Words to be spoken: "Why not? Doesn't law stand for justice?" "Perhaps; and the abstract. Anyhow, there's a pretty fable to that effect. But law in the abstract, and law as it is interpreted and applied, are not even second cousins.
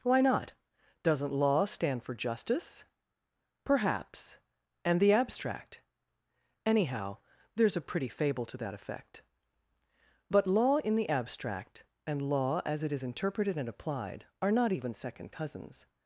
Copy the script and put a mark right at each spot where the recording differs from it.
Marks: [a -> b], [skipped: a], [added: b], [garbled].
"Why not? Doesn't law stand for justice?" "Perhaps; and the abstract. Anyhow, there's a pretty fable to that effect. But law in the abstract, and law as it is interpreted and applied, are not even second cousins.